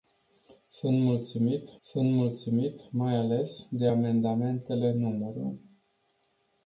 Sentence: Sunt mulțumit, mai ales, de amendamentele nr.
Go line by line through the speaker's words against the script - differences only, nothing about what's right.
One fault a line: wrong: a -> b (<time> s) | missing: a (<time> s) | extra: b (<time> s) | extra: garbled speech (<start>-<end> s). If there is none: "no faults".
extra: sunt mulțumit (1.8 s)